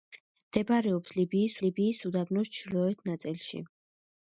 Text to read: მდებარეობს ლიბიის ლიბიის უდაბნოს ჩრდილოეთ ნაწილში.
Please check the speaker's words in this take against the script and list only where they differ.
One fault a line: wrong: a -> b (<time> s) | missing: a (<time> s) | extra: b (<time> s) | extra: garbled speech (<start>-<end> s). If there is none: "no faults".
no faults